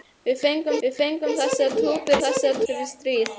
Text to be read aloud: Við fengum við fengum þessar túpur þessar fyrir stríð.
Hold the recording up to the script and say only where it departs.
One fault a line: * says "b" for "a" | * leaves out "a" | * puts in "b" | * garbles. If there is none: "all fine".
all fine